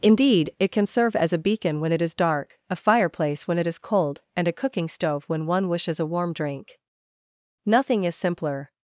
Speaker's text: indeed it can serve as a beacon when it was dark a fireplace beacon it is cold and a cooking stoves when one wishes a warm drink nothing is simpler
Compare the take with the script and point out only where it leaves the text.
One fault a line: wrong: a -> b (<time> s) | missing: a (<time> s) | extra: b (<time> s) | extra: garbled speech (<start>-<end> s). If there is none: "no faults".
wrong: was -> is (2.0 s)
wrong: beacon -> when (3.5 s)
wrong: stoves -> stove (4.9 s)